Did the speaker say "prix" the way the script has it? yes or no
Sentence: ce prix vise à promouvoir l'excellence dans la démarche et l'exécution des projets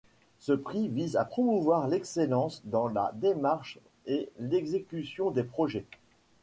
yes